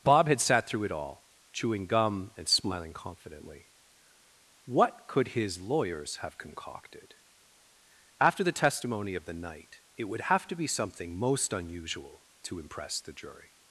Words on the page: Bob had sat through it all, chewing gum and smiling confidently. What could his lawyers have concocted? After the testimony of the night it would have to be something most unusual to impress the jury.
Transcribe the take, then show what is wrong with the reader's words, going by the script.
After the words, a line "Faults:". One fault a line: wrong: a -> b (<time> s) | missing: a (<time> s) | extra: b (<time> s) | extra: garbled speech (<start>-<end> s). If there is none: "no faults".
Bob had sat through it all, chewing gum and smiling confidently. What could his lawyers have concocted? After the testimony of the night it would have to be something most unusual to impress the jury.
Faults:
no faults